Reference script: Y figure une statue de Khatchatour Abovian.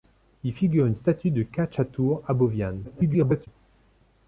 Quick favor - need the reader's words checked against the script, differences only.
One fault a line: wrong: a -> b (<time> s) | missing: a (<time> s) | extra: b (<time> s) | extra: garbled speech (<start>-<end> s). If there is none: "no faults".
extra: garbled speech (2.8-3.5 s)